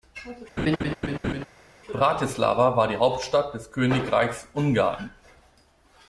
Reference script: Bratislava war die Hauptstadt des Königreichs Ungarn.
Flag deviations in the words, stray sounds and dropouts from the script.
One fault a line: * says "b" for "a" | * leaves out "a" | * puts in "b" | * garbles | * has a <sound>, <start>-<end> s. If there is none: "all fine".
* has a laugh, 0.6-1.5 s